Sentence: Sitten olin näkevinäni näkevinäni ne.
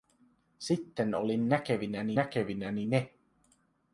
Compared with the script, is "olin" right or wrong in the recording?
right